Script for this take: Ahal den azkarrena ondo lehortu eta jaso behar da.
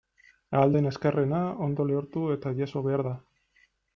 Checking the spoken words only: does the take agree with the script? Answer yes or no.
yes